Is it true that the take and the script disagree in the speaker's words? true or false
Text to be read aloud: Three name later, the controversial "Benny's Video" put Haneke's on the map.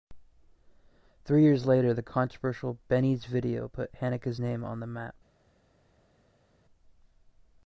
true